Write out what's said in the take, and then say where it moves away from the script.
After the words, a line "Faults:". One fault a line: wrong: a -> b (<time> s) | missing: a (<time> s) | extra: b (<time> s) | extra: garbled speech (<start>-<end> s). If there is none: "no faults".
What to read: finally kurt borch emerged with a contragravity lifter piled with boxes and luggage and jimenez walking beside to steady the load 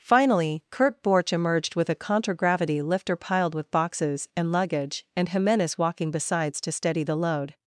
finally kurt borch emerged with a contragravity lifter piled with boxes and luggage and jimenez walking besides to steady the load
Faults:
wrong: beside -> besides (6.1 s)